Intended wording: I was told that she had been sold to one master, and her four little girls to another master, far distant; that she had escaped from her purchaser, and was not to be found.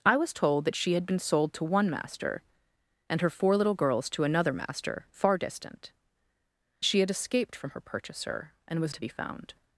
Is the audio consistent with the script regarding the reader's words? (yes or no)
no